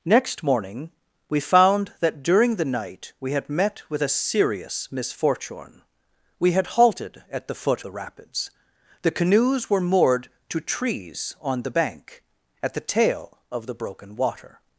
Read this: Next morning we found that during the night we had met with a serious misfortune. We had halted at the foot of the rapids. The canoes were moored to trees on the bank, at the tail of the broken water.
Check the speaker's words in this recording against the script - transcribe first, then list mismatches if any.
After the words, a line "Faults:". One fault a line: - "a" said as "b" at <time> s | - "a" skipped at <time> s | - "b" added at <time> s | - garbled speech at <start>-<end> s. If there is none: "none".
Next morning we found that during the night we had met with a serious misfortune. We had halted at the foot the rapids. The canoes were moored to trees on the bank, at the tail of the broken water.
Faults:
- "of" skipped at 7.8 s